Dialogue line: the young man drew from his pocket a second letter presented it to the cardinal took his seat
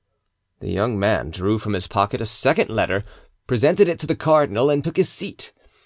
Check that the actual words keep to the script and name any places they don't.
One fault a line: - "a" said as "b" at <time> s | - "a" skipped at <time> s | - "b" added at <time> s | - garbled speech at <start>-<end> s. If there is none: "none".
- "and" added at 4.7 s